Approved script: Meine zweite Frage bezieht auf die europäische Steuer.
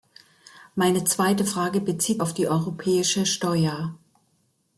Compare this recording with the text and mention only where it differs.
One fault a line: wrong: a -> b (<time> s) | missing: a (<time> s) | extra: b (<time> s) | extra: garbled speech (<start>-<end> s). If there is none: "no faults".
no faults